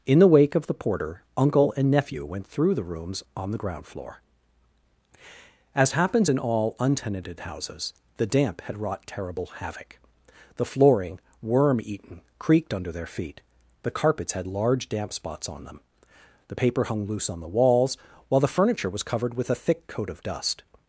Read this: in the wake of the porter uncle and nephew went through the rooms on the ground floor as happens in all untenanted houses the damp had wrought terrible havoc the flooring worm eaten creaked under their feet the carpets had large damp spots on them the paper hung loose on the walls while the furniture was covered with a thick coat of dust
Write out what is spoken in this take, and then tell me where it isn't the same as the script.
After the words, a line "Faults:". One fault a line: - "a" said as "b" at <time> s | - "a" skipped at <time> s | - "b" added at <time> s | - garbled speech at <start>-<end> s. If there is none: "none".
in the wake of the porter uncle and nephew went through the rooms on the ground floor as happens in all untenanted houses the damp had wrought terrible havoc the flooring worm eaten creaked under their feet the carpets had large damp spots on them the paper hung loose on the walls while the furniture was covered with a thick coat of dust
Faults:
none